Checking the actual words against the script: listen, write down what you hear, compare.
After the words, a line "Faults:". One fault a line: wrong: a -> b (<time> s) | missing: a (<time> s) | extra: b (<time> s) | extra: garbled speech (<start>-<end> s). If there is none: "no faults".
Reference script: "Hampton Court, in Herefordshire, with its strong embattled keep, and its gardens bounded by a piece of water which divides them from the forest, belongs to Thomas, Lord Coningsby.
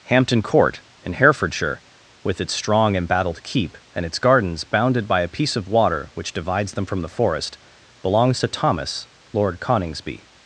"Hampton Court, in Herefordshire, with its strong embattled keep, and its gardens bounded by a piece of water which divides them from the forest, belongs to Thomas, Lord Coningsby.
Faults:
no faults